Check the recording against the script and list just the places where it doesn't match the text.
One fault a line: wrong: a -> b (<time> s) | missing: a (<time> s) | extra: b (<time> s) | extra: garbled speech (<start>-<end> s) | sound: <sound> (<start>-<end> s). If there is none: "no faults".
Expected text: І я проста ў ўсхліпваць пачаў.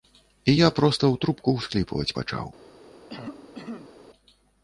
extra: трубку (1.2 s)
sound: cough (3.1-3.9 s)